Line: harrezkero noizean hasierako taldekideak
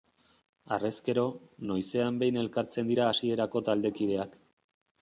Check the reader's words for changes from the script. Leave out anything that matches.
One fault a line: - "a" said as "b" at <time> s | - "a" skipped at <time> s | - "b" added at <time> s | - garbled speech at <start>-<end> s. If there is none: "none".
- "behin elkartzen dira" added at 2.2 s